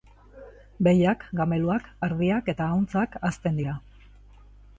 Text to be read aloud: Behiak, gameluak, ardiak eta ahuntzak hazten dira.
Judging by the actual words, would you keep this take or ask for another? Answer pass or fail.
pass